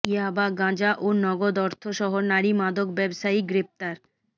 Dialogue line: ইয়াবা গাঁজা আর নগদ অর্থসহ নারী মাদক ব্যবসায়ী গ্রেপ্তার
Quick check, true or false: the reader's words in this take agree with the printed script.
false